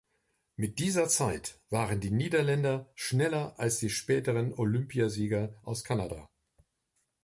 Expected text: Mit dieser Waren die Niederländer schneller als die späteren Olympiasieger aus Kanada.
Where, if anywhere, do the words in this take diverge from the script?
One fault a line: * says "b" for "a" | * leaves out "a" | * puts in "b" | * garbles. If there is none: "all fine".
* puts in "Zeit"